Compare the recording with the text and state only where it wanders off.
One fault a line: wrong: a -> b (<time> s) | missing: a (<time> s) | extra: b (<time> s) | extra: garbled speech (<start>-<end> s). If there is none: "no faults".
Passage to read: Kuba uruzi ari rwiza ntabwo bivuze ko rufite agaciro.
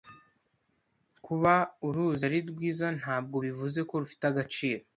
no faults